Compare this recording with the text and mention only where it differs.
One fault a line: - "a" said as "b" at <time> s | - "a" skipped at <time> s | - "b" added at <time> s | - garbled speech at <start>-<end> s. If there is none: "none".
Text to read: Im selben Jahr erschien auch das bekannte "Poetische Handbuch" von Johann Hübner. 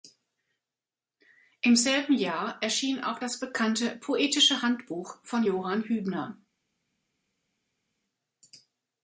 none